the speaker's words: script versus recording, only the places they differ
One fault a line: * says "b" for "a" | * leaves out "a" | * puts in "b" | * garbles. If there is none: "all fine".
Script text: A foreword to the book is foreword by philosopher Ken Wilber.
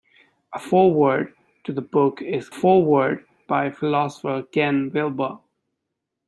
all fine